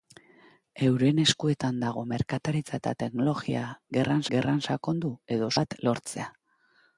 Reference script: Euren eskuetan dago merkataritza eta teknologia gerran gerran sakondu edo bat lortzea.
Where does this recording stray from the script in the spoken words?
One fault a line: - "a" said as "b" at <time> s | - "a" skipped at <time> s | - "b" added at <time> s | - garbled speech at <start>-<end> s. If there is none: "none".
none